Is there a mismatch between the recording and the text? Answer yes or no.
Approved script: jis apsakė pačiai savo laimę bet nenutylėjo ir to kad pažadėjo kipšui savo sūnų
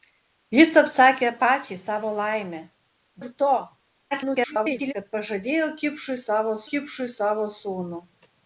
yes